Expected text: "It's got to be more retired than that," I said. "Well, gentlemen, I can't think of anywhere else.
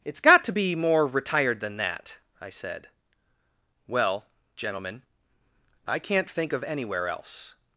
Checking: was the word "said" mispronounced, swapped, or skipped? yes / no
no